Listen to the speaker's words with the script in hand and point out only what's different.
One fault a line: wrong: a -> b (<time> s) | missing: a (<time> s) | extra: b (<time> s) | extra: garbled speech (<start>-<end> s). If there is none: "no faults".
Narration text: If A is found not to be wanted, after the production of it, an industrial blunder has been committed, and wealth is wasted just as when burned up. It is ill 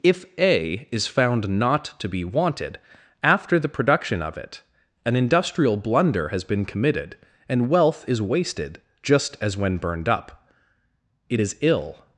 no faults